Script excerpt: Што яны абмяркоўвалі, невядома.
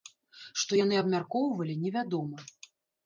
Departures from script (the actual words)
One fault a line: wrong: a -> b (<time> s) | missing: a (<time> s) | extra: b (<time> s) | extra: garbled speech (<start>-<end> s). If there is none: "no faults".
no faults